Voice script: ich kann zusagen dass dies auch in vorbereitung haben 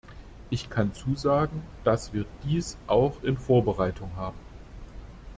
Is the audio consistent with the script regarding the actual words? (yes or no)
no